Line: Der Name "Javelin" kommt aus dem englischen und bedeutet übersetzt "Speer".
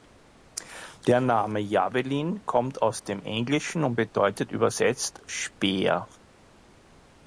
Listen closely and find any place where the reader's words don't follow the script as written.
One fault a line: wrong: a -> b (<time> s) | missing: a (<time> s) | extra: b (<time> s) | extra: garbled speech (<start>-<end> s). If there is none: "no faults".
no faults